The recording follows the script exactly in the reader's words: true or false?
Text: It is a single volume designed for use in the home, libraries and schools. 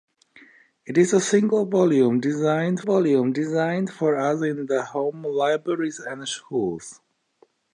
false